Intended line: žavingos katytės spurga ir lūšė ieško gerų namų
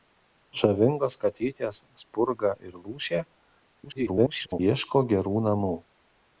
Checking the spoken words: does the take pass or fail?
fail